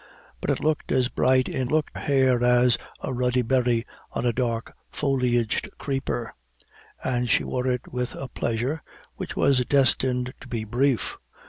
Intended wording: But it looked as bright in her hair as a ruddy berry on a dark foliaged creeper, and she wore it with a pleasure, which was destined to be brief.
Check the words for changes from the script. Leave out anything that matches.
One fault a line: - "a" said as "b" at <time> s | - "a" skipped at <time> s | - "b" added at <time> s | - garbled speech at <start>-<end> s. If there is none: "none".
- "her" said as "looked" at 1.7 s